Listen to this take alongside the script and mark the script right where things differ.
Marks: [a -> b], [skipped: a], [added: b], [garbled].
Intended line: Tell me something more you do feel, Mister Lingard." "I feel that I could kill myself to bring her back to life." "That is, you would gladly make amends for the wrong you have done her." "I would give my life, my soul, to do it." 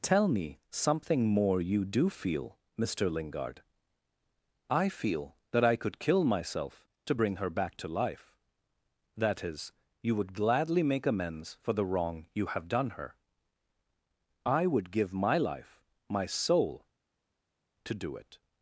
Tell me something more you do feel, Mister Lingard." "I feel that I could kill myself to bring her back to life." "That is, you would gladly make amends for the wrong you have done her." "I would give my life, my soul, to do it."